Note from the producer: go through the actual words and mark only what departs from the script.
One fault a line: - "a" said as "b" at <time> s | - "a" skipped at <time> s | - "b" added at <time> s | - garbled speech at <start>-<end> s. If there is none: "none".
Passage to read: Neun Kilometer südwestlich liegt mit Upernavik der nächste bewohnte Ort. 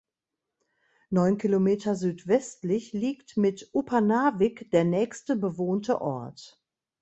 none